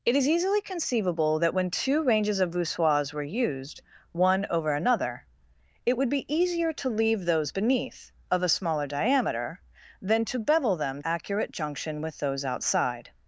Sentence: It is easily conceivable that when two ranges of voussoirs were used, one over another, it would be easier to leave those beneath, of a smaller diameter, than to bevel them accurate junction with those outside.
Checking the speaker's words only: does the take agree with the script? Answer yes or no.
yes